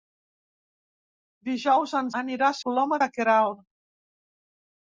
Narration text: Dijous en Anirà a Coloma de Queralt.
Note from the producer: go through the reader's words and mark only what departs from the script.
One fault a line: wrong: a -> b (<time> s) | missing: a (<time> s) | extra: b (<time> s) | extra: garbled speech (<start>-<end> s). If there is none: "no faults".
no faults